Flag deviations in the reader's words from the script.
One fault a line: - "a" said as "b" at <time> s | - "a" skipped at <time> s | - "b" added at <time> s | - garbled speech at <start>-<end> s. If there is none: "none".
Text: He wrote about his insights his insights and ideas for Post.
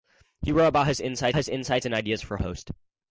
none